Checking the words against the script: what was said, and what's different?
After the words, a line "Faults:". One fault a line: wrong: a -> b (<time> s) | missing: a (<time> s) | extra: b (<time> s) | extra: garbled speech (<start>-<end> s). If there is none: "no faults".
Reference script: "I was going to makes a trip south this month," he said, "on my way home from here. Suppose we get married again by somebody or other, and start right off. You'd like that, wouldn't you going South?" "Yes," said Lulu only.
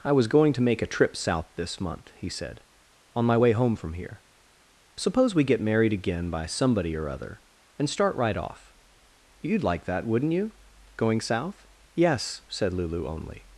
"I was going to make a trip south this month," he said, "on my way home from here. Suppose we get married again by somebody or other, and start right off. You'd like that, wouldn't you going South?" "Yes," said Lulu only.
Faults:
wrong: makes -> make (0.6 s)